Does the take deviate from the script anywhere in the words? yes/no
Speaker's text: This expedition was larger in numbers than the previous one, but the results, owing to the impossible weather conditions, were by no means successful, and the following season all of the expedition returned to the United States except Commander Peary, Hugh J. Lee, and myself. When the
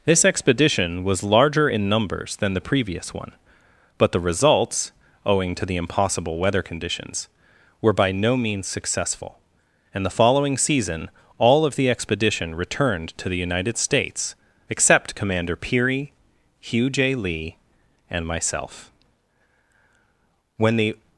no